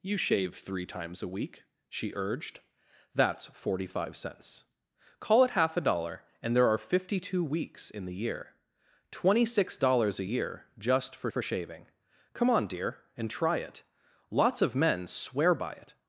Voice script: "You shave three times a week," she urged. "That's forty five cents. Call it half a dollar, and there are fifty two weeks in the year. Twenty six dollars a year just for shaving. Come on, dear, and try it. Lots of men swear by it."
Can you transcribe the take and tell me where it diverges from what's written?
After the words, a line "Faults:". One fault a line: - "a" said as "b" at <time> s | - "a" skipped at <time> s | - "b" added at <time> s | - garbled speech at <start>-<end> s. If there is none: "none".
"You shave three times a week," she urged. "That's forty five cents. Call it half a dollar, and there are fifty two weeks in the year. Twenty six dollars a year just for for shaving. Come on, dear, and try it. Lots of men swear by it."
Faults:
- "for" added at 11.3 s